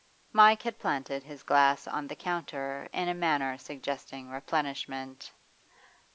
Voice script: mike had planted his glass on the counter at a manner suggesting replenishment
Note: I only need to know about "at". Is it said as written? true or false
false